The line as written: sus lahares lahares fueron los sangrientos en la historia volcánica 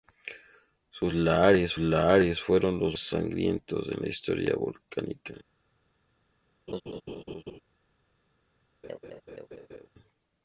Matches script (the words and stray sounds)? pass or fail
fail